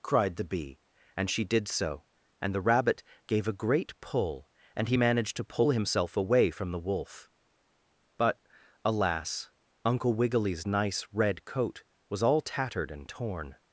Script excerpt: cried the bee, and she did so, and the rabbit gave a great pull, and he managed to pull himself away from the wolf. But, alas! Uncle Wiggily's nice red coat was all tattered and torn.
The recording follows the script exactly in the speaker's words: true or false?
true